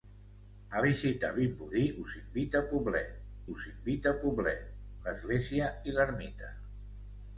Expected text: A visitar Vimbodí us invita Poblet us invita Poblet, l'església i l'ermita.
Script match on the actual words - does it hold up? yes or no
yes